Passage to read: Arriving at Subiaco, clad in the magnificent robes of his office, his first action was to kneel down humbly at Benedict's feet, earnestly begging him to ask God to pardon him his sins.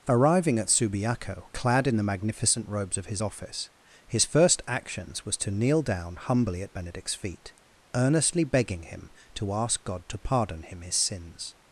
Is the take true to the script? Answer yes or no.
no